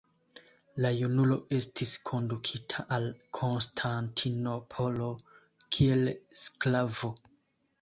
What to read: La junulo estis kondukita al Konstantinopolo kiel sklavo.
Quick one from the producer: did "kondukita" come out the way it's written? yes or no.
yes